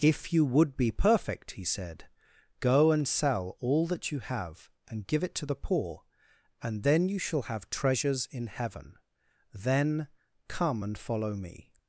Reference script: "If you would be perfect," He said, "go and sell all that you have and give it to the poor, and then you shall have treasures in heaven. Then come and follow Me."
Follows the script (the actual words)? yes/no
yes